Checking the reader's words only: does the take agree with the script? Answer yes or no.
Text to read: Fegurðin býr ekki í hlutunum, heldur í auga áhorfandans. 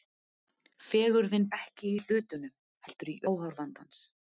no